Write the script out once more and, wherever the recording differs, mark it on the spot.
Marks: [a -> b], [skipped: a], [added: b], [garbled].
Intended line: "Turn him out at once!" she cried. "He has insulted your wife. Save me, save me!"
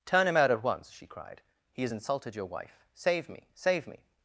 "Turn him out at once!" she cried. "He has insulted your wife. Save me, save me!"